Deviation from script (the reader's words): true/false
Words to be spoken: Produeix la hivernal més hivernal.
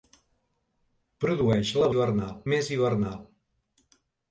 false